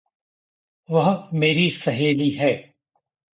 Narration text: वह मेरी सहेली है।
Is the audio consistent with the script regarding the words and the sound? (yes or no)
yes